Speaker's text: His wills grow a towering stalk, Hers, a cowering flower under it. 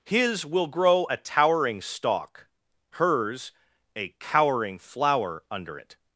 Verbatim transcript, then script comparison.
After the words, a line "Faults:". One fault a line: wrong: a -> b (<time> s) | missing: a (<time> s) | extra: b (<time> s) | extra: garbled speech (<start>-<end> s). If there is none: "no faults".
His will grow a towering stalk, Hers, a cowering flower under it.
Faults:
wrong: wills -> will (0.5 s)